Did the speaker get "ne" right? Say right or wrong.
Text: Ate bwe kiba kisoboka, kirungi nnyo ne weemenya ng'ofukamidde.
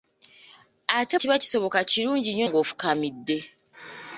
wrong